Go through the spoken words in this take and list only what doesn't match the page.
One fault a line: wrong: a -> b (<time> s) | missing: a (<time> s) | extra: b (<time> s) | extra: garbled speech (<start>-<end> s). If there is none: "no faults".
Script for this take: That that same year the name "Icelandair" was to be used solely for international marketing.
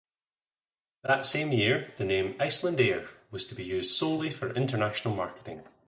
missing: that (1.2 s)